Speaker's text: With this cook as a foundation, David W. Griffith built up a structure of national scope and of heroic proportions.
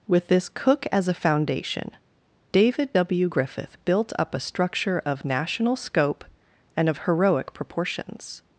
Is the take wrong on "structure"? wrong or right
right